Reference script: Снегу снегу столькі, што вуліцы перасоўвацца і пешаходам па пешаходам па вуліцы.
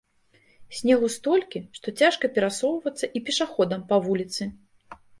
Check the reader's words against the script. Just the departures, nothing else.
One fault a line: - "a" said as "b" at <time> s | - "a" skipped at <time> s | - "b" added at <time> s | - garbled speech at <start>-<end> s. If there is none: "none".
- "снегу" skipped at 1.1 s
- "вуліцы" said as "цяжка" at 2.0 s
- "пешаходам па" skipped at 4.0 s